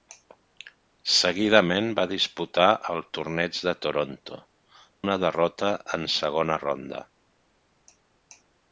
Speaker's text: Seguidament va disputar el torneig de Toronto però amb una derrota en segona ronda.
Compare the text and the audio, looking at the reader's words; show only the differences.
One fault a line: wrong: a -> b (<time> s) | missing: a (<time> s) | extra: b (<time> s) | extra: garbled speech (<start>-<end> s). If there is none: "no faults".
missing: però amb (4.4 s)